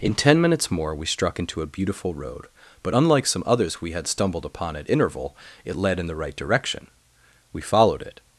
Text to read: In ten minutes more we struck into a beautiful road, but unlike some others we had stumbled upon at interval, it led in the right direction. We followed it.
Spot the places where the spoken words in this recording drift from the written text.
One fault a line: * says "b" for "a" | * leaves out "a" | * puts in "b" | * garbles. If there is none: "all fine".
all fine